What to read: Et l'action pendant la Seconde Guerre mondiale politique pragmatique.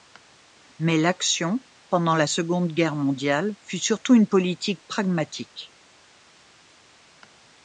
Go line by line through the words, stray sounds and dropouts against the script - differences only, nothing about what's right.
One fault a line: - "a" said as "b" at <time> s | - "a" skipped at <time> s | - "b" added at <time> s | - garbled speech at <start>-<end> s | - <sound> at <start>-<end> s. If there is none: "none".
- "Et" said as "Mais" at 0.8 s
- "fut surtout une" added at 3.6 s